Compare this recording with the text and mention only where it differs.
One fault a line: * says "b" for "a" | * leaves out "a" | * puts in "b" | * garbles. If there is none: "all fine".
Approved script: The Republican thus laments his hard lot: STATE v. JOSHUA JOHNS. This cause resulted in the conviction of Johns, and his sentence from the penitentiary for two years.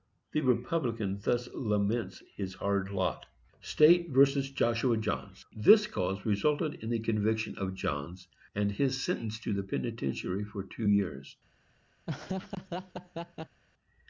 * says "to" for "from"